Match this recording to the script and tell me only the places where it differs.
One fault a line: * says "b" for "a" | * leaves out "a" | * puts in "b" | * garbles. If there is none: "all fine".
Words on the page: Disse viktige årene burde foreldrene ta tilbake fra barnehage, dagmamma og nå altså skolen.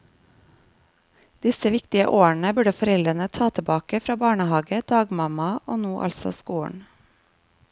all fine